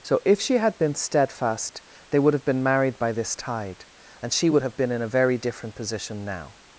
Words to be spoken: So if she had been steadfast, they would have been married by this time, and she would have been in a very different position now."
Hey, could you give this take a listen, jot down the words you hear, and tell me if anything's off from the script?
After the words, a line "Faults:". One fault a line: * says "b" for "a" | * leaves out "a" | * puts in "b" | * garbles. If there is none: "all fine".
So if she had been steadfast, they would have been married by this tide, and she would have been in a very different position now."
Faults:
* says "tide" for "time"